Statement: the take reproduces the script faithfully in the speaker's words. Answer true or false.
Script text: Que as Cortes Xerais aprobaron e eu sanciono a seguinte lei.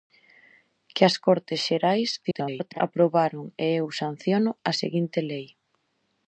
false